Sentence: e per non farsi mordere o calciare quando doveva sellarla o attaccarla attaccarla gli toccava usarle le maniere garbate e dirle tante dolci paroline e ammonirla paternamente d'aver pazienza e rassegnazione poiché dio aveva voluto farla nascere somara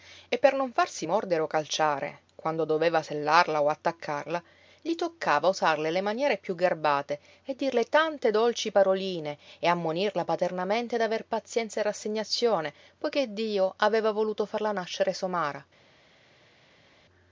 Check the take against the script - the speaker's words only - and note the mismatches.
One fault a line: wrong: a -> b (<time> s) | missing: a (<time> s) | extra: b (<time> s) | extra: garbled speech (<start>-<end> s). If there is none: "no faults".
missing: attaccarla (4.4 s)
extra: piú (6.4 s)